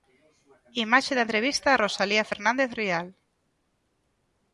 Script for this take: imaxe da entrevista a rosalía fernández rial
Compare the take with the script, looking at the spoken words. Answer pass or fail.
pass